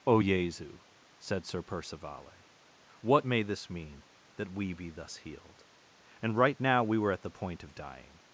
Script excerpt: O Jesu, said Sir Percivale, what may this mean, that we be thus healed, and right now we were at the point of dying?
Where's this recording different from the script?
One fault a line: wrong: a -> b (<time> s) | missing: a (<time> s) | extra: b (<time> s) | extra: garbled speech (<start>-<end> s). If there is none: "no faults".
no faults